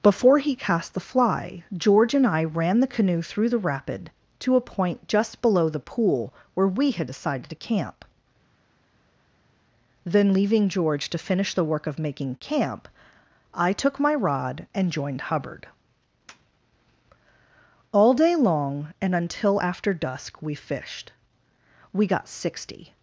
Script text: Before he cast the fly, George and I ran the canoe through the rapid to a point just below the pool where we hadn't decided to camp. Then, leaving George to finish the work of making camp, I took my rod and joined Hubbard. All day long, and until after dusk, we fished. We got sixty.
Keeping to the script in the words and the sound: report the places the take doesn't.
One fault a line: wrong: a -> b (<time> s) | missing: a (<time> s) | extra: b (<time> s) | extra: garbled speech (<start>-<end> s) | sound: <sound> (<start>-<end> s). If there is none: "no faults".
wrong: hadn't -> had (6.9 s)